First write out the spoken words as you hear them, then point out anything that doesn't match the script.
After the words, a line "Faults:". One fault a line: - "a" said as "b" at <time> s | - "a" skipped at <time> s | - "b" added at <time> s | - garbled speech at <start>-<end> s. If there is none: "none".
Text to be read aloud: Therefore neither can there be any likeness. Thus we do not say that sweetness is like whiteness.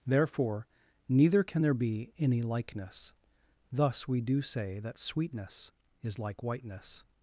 Therefore neither can there be any likeness. Thus we do say that sweetness is like whiteness.
Faults:
- "not" skipped at 4.4 s